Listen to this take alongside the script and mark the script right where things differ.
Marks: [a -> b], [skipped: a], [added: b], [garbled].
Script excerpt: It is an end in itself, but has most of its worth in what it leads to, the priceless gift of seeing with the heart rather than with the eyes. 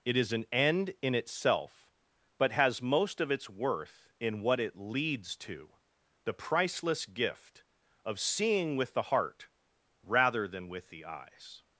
It is an end in itself, but has most of its worth in what it leads to, the priceless gift of seeing with the heart rather than with the eyes.